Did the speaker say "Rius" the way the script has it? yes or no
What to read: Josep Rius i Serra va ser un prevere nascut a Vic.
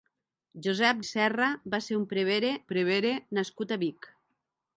no